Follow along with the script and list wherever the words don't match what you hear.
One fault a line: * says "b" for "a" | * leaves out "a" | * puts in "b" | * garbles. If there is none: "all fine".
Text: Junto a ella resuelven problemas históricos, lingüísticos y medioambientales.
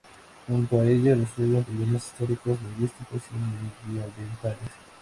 all fine